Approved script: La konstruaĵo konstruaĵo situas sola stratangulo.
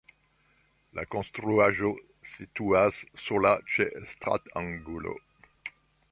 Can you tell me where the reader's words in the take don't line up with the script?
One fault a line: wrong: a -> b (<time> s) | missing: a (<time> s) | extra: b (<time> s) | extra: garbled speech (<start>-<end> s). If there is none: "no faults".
missing: konstruaĵo (1.9 s)
extra: ĉe (3.8 s)